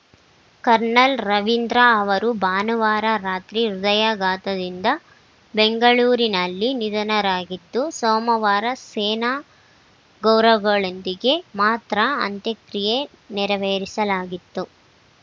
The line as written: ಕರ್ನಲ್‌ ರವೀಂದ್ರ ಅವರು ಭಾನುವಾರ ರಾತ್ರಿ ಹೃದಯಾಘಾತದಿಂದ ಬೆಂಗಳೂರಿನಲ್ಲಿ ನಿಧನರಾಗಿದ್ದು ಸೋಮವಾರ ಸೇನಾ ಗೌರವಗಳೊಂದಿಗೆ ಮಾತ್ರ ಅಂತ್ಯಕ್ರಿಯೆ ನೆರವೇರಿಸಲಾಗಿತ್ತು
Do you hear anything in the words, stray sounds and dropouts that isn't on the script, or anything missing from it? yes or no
no